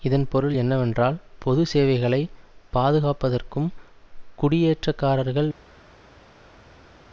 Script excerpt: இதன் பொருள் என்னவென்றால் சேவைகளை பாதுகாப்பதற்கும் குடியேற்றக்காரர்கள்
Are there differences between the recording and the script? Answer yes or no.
yes